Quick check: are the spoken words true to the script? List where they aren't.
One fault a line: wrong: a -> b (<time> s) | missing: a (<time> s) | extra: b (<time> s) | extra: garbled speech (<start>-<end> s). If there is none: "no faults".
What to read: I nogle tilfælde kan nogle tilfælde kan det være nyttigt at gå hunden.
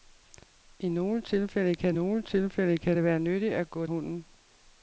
no faults